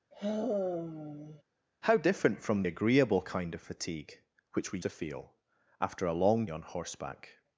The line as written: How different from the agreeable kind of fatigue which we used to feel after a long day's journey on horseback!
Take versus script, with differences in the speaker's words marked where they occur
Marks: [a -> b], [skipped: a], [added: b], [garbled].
How different from [skipped: the] agreeable kind of fatigue which we [skipped: used] to feel after a long [skipped: day's journey] on horseback!